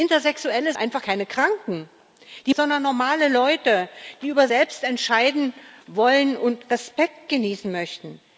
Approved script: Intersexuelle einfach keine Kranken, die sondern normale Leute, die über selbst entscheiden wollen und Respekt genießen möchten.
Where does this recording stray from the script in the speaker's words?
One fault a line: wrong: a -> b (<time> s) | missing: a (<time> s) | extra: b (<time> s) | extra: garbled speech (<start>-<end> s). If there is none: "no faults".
no faults